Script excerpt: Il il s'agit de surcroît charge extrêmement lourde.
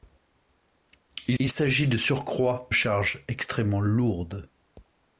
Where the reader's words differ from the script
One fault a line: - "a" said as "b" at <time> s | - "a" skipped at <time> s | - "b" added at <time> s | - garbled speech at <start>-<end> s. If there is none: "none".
none